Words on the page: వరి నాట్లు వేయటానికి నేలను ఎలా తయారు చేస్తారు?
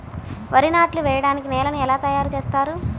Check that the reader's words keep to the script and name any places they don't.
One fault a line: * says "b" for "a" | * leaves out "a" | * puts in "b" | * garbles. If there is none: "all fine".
all fine